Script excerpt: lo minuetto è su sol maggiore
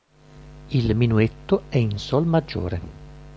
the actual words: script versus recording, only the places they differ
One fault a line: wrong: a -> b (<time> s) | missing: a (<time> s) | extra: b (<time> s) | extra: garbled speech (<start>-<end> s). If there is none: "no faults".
wrong: lo -> il (0.7 s)
wrong: su -> in (1.8 s)